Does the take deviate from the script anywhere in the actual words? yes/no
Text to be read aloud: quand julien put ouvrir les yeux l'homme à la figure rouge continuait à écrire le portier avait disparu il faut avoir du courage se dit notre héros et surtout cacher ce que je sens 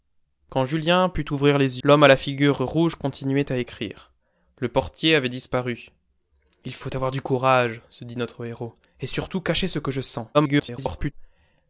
yes